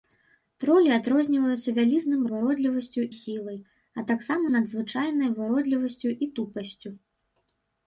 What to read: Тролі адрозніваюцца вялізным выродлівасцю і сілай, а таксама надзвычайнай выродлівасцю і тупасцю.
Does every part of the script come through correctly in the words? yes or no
yes